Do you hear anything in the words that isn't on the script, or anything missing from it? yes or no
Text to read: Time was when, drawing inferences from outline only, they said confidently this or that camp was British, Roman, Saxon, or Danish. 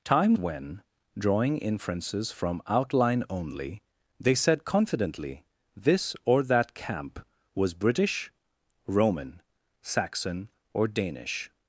yes